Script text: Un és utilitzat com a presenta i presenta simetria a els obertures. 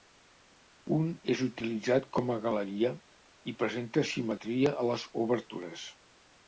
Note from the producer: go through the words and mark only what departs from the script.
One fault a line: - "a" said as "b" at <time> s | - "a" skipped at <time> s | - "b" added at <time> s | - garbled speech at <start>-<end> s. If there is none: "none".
- "presenta" said as "galeria" at 2.5 s
- "els" said as "les" at 4.9 s